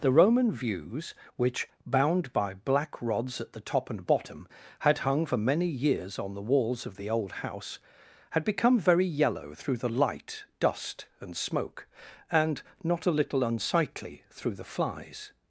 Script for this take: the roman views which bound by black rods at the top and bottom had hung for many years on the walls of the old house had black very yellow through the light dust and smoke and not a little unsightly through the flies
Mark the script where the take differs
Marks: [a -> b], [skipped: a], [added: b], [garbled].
the roman views which bound by black rods at the top and bottom had hung for many years on the walls of the old house had [black -> become] very yellow through the light dust and smoke and not a little unsightly through the flies